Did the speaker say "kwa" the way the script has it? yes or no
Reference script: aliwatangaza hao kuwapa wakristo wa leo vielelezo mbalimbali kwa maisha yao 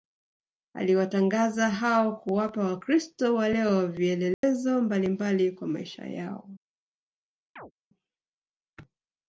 yes